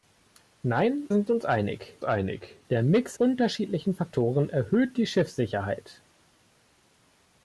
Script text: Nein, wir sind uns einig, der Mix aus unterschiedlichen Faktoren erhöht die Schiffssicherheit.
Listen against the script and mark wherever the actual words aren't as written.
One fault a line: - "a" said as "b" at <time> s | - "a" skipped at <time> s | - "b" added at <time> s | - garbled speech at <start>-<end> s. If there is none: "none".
- "wir" skipped at 1.1 s
- "einig" added at 2.0 s
- "aus" skipped at 3.2 s